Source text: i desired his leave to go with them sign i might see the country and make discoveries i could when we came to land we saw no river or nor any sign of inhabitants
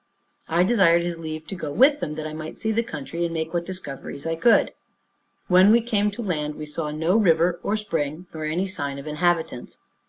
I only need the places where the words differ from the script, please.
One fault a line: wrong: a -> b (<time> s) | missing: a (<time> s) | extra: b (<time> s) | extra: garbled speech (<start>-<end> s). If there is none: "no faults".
wrong: sign -> that (2.1 s)
extra: what (3.5 s)
extra: spring (7.8 s)